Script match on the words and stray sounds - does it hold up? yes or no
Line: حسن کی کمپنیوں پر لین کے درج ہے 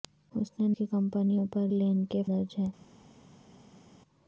yes